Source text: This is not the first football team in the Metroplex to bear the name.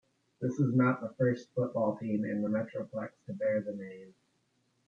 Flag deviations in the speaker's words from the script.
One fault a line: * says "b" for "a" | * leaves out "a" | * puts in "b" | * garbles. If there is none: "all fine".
all fine